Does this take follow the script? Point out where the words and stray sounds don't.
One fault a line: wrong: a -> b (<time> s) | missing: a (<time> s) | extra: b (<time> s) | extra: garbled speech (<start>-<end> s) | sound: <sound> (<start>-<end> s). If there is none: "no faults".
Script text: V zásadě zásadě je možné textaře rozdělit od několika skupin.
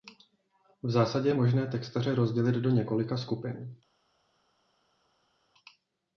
missing: zásadě (1.3 s)
wrong: od -> do (2.6 s)